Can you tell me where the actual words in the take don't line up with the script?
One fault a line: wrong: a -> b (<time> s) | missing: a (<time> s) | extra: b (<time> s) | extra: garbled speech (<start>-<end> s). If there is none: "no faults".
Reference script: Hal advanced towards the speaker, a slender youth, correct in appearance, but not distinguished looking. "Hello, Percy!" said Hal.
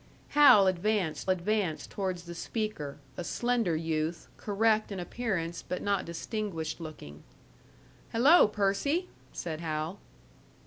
extra: advanced (1.3 s)